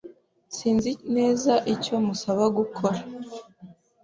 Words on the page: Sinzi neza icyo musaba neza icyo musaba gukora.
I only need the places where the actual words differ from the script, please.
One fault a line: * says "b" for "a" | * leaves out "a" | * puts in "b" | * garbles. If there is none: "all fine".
* leaves out "neza icyo musaba"